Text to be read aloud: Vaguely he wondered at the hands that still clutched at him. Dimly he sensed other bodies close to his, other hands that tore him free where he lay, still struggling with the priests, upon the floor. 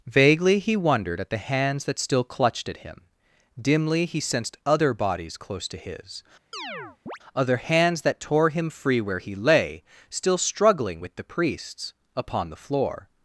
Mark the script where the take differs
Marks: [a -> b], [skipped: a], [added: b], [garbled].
Vaguely he wondered at the hands that still clutched at him. Dimly he sensed other bodies close to his, other hands that tore him free where he lay, still struggling with the priests, upon the floor.